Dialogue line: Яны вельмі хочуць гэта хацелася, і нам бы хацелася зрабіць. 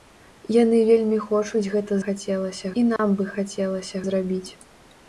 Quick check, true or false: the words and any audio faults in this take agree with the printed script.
false